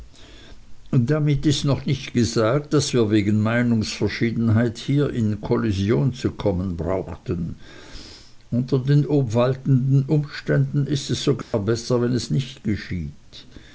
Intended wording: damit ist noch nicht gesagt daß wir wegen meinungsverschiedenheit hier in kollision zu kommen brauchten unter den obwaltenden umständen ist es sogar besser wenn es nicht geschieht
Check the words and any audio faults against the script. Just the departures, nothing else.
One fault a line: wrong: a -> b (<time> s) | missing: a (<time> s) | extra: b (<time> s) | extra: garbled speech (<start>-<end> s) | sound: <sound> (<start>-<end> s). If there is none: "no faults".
sound: dropout (11.4-11.5 s)